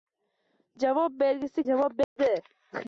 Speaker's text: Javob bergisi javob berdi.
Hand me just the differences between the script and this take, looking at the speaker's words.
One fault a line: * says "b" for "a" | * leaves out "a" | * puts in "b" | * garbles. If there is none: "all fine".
all fine